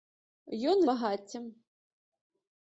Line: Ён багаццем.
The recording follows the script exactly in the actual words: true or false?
true